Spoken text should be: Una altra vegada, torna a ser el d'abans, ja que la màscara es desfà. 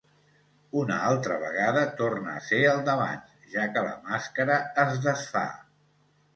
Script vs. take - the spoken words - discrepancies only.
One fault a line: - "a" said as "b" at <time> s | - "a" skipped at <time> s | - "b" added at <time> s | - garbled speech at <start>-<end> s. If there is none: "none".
none